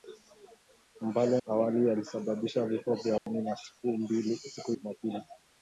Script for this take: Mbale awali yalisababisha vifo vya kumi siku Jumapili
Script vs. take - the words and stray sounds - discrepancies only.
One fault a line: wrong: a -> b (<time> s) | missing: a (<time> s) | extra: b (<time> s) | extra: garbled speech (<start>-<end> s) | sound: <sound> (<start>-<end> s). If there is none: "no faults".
sound: dropout (3.2-3.3 s)